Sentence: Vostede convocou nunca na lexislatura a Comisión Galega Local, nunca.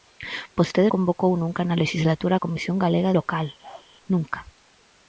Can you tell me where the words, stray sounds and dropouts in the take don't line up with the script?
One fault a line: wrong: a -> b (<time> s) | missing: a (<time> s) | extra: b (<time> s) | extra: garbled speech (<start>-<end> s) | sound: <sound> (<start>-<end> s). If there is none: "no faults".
sound: bark (3.6-3.9 s)